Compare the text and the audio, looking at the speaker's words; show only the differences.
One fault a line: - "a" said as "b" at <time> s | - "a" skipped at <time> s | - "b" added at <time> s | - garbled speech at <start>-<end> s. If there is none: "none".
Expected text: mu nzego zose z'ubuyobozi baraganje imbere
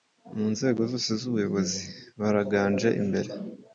none